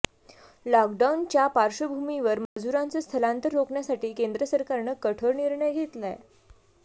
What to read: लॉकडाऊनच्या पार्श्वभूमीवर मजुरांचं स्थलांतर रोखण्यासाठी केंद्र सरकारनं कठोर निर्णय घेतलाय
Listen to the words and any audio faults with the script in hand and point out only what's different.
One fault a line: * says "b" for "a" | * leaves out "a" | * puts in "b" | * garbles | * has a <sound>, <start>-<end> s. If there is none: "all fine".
* has a dropout, 2.5-2.6 s